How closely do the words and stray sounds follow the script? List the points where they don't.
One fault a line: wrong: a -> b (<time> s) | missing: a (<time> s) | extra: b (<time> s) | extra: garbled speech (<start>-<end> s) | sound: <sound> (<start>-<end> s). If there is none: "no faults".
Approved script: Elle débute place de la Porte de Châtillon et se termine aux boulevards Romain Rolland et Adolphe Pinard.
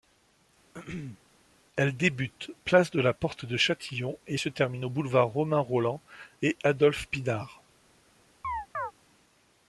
sound: throat clearing (0.7-1.2 s)
sound: chirp (8.4-8.9 s)